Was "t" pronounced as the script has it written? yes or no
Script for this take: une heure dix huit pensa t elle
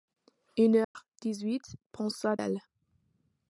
no